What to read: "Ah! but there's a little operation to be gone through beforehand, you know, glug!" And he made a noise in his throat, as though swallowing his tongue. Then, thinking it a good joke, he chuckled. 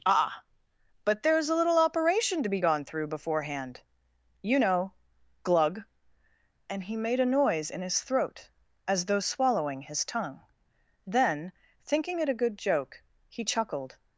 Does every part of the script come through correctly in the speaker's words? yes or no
yes